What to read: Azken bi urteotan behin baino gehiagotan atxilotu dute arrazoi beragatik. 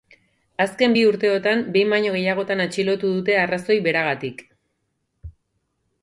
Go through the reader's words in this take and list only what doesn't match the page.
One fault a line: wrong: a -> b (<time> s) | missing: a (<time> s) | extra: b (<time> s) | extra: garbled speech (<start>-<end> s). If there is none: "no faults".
no faults